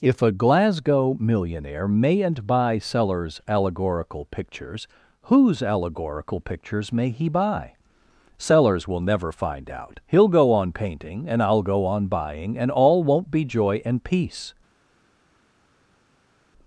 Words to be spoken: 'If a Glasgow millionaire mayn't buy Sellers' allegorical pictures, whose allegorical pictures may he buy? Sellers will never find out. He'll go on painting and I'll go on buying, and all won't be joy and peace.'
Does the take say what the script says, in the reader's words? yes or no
yes